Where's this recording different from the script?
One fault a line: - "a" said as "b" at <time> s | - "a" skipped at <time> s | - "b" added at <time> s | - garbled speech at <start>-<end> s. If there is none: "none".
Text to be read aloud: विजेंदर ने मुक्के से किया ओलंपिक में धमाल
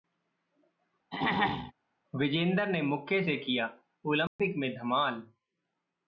none